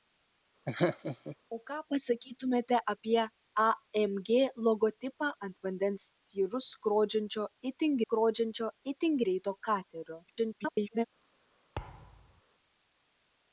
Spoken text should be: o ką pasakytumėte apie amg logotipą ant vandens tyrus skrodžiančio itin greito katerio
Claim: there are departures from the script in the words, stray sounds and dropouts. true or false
true